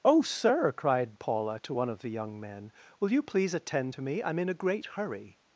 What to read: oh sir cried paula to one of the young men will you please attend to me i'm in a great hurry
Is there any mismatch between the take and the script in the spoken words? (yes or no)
no